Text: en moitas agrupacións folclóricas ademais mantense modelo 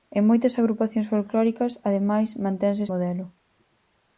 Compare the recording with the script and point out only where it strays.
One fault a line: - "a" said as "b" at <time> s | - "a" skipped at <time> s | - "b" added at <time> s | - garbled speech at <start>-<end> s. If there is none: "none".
none